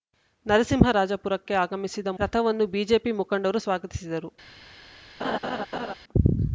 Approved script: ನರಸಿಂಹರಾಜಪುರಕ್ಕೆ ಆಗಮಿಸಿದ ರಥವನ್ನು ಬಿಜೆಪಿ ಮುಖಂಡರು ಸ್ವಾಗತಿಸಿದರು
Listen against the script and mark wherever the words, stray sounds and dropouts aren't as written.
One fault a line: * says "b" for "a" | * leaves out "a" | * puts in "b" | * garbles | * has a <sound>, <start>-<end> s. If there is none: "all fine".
* has a laugh, 5.2-5.9 s